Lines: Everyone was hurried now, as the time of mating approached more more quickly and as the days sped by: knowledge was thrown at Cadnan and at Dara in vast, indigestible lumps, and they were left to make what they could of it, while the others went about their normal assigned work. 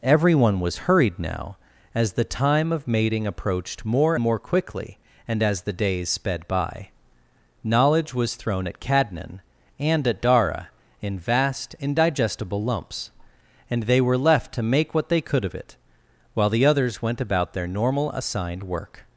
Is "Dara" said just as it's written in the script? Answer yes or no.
yes